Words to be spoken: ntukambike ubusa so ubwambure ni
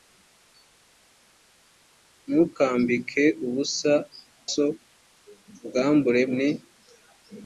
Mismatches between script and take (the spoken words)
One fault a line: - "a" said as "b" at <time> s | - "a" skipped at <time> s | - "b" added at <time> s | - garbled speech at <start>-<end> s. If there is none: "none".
none